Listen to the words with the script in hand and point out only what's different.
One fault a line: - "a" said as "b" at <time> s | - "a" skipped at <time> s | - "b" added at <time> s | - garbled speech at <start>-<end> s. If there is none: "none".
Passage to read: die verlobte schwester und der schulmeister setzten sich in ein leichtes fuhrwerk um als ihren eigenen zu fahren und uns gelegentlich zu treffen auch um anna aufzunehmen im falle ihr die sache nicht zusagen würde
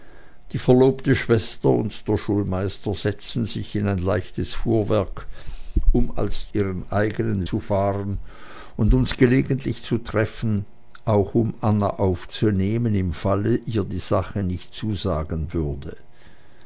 none